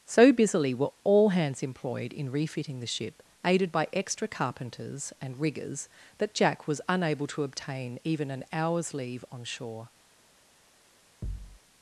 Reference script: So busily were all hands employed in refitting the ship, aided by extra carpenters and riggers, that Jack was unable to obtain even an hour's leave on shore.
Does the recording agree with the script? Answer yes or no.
yes